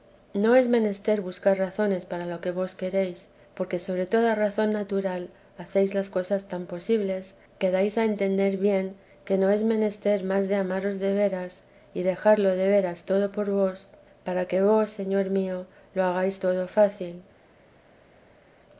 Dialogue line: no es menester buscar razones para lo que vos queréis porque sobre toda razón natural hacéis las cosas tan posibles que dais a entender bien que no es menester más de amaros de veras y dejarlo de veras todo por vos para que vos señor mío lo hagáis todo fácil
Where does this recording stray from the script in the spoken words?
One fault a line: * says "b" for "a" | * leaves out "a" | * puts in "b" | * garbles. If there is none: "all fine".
all fine